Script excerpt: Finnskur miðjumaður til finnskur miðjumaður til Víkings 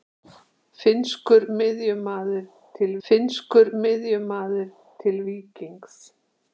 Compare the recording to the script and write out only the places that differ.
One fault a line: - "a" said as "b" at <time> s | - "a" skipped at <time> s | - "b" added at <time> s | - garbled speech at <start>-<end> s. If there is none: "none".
none